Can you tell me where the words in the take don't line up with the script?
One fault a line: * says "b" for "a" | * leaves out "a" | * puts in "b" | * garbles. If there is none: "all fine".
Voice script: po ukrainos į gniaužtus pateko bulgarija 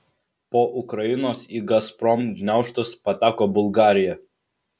* puts in "gazprom"